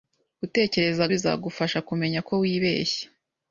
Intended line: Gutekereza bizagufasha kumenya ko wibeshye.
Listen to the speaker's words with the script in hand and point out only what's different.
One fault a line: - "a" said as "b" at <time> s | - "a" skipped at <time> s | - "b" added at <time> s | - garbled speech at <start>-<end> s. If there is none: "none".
none